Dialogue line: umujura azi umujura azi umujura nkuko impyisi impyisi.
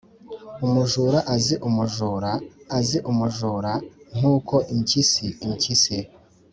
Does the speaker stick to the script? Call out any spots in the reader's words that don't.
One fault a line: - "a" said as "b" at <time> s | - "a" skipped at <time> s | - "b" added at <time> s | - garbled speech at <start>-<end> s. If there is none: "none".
none